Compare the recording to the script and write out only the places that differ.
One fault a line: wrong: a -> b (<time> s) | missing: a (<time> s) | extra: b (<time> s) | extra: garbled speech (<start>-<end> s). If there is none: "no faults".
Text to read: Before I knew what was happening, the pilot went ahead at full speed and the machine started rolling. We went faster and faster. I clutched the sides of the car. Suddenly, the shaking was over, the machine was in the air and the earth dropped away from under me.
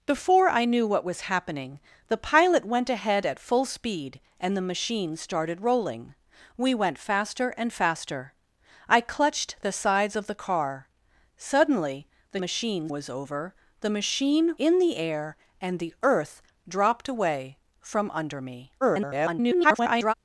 wrong: shaking -> machine (12.4 s)
missing: was (14.5 s)
extra: garbled speech (18.8-20.1 s)